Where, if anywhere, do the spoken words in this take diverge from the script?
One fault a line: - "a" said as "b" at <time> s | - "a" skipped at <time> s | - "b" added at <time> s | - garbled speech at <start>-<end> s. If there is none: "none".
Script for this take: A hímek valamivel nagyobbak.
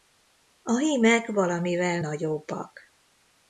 none